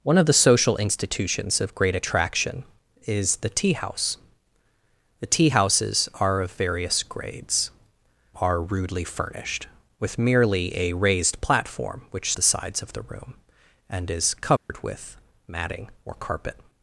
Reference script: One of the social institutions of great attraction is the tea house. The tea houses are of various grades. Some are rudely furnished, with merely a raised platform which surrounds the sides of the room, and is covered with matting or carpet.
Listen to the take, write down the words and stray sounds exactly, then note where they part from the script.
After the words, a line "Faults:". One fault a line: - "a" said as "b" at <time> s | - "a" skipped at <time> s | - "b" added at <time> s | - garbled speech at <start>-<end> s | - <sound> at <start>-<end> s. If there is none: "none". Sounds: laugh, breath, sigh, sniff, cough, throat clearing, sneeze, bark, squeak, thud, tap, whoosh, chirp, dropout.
One of the social institutions of great attraction is the tea house. The tea houses are of various grades. Are rudely furnished, with merely a raised platform which the sides of the room, and is covered with matting or carpet.
Faults:
- "Some" skipped at 7.7 s
- "surrounds" skipped at 12.3 s
- dropout at 14.6-14.7 s